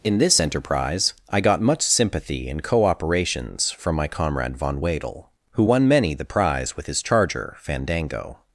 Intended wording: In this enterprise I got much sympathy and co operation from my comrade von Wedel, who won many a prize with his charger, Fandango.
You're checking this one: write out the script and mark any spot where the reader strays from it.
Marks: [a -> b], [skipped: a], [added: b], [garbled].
In this enterprise I got much sympathy and co [operation -> operations] from my comrade von Wedel, who won many [a -> the] prize with his charger, Fandango.